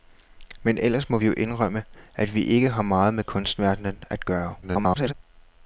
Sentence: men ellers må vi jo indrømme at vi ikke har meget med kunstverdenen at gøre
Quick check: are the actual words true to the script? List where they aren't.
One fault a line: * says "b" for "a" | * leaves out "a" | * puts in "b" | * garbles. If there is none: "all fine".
* garbles